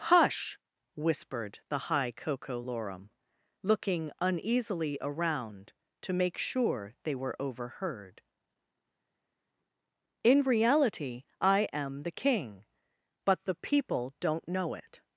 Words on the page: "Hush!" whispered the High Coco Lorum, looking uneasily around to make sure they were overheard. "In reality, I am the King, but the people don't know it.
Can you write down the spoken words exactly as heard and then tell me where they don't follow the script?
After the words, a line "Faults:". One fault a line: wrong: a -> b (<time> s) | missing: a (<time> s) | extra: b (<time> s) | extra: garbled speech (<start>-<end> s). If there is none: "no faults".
"Hush!" whispered the High Coco Lorum, looking uneasily around to make sure they were overheard. "In reality, I am the King, but the people don't know it.
Faults:
no faults